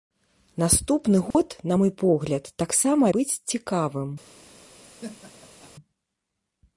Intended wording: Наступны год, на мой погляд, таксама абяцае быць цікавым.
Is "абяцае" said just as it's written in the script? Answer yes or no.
no